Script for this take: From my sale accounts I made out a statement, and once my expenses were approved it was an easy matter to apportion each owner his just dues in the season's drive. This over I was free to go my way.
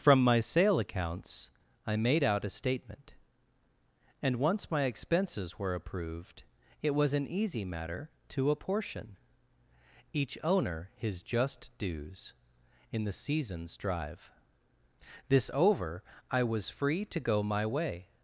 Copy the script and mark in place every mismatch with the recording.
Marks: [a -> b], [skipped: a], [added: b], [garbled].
From my sale accounts I made out a statement, and once my expenses were approved it was an easy matter to apportion each owner his just dues in the season's drive. This over I was free to go my way.